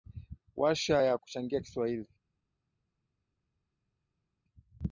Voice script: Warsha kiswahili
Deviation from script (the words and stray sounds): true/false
true